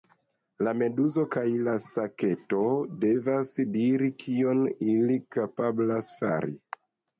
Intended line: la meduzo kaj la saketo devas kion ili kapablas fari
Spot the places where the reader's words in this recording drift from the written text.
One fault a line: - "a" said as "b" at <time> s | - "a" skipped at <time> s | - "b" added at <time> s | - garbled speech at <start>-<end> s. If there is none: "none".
- "diri" added at 3.8 s